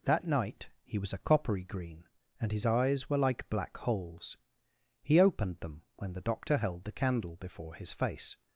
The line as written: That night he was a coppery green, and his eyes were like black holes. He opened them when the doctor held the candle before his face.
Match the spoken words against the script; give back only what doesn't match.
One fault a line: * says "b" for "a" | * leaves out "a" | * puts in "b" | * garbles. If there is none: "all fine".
all fine